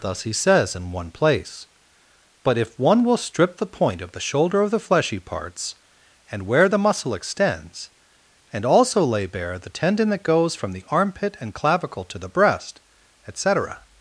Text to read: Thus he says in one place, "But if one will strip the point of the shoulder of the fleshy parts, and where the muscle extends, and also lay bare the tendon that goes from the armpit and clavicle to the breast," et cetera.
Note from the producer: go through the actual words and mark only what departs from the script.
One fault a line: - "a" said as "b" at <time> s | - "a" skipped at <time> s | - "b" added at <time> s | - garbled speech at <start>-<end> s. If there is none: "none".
none